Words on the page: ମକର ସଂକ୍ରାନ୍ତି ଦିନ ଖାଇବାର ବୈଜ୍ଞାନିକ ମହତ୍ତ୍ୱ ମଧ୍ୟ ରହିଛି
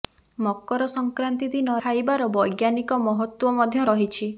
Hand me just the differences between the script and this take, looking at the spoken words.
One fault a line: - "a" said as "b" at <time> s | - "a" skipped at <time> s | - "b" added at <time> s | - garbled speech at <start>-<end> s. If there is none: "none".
none